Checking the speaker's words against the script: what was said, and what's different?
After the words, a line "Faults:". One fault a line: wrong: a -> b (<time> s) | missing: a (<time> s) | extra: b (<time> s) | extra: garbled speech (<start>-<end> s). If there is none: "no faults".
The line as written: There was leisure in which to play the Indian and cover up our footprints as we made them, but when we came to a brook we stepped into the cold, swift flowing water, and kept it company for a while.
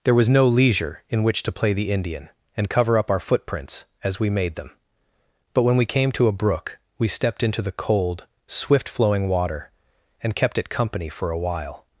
There was no leisure in which to play the Indian and cover up our footprints as we made them, but when we came to a brook we stepped into the cold, swift flowing water, and kept it company for a while.
Faults:
extra: no (0.3 s)